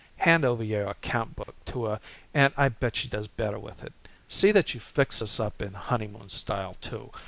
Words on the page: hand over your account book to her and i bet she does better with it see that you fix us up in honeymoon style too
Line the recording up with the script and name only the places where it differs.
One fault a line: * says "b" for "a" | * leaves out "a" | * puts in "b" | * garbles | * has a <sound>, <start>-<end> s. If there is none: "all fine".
* has a dropout, 1.4-1.5 s